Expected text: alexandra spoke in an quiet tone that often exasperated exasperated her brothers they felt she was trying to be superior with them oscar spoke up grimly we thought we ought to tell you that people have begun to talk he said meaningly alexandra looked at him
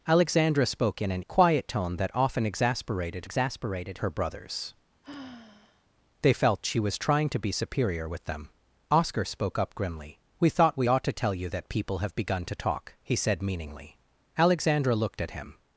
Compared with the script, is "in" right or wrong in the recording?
right